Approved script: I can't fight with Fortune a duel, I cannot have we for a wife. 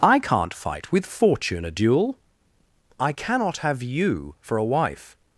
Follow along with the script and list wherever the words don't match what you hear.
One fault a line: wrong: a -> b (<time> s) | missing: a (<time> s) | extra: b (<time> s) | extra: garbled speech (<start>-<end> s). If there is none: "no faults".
wrong: we -> you (3.8 s)